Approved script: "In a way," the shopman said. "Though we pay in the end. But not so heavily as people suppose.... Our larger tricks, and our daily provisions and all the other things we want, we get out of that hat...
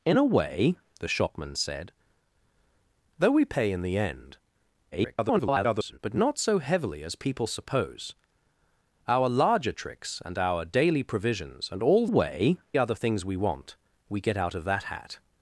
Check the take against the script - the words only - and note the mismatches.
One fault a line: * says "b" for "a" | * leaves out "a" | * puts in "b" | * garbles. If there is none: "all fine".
* garbles
* says "way" for "the"